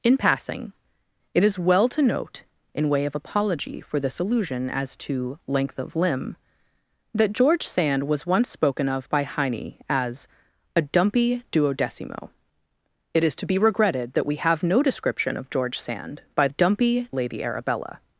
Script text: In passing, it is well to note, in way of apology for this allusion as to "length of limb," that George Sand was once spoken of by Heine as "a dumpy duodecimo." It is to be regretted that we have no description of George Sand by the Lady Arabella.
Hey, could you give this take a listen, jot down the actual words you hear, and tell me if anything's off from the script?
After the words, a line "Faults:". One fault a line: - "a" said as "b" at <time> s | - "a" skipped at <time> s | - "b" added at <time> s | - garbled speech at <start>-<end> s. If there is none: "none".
In passing, it is well to note, in way of apology for this allusion as to "length of limb," that George Sand was once spoken of by Heine as "a dumpy duodecimo." It is to be regretted that we have no description of George Sand by dumpy Lady Arabella.
Faults:
- "the" said as "dumpy" at 16.5 s